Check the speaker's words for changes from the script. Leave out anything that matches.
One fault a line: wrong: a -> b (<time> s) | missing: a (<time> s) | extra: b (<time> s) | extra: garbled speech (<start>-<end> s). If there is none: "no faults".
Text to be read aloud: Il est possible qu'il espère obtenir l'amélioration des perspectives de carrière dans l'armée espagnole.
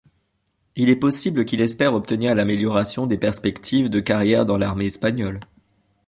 no faults